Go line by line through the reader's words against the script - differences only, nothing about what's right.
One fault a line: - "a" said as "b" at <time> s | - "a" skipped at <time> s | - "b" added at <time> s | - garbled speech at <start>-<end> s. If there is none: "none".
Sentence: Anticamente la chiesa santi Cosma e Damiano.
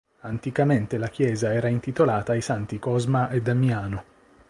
- "era intitolata ai" added at 1.5 s